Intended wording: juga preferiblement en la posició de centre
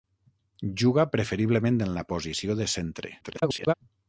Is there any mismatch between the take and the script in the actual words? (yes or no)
yes